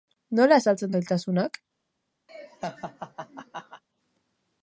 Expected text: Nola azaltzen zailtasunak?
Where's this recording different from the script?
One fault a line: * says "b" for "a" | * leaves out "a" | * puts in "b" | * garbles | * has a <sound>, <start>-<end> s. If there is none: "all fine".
* has a laugh, 2.3-3.8 s